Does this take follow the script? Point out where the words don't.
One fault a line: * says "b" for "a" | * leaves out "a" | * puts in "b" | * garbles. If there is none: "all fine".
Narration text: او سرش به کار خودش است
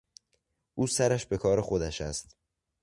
all fine